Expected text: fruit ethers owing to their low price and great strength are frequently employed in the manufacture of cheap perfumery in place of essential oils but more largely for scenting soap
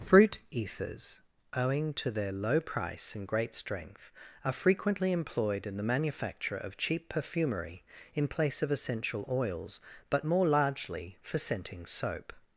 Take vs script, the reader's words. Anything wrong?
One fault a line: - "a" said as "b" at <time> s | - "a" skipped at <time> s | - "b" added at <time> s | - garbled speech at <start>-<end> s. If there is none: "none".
none